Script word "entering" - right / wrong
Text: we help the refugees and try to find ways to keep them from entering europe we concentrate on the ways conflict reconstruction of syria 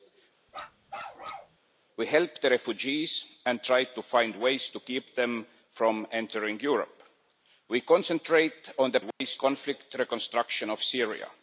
right